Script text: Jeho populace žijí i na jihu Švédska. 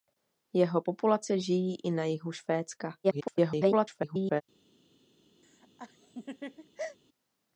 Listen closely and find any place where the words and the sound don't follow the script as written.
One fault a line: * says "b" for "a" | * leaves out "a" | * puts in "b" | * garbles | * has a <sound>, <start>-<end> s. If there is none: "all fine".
* garbles
* has a laugh, 5.4-7.0 s